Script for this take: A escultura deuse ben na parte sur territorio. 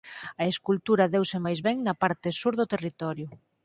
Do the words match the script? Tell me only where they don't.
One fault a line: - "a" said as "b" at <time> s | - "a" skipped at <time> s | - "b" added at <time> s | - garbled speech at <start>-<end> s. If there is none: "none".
- "máis" added at 1.5 s
- "do" added at 2.6 s